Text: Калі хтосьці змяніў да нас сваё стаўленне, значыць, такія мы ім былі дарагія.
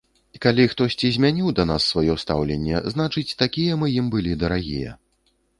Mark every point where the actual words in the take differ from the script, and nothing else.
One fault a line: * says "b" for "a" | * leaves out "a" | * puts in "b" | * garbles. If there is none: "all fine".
all fine